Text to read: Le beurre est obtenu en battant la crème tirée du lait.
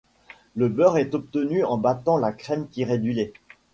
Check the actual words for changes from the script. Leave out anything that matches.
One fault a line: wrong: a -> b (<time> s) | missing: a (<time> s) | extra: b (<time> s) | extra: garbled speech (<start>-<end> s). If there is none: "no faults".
no faults